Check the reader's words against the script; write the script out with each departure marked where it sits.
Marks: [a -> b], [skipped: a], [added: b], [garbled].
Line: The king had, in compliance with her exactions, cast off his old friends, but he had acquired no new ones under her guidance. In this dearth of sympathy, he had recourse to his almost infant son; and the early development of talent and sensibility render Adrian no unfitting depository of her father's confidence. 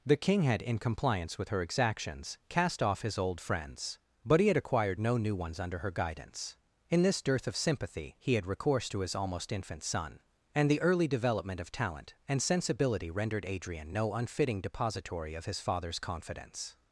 The king had, in compliance with her exactions, cast off his old friends, but he had acquired no new ones under her guidance. In this dearth of sympathy, he had recourse to his almost infant son; and the early development of talent and sensibility [render -> rendered] Adrian no unfitting depository of [her -> his] father's confidence.